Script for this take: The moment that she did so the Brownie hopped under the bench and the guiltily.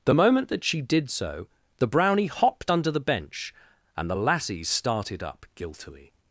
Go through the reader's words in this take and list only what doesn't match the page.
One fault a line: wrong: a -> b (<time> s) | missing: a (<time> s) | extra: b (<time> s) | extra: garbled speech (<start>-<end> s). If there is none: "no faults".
extra: lassies started up (4.1 s)